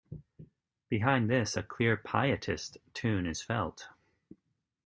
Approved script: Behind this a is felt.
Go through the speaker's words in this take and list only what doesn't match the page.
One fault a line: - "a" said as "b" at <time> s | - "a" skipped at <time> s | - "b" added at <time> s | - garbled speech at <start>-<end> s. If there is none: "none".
- "clear pietist tune" added at 1.6 s